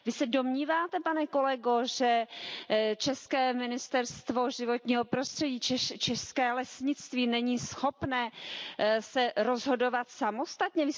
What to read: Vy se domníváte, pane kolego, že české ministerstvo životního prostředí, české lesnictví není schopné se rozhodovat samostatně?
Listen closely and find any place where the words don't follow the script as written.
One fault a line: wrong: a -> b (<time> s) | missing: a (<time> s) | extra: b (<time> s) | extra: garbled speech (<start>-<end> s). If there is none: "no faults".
no faults